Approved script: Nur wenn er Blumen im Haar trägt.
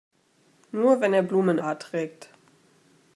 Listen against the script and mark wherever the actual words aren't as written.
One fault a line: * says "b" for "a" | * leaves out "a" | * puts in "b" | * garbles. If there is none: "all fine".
* leaves out "im"